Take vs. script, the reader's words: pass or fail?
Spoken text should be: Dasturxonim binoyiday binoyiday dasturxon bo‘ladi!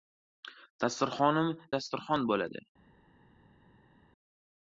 fail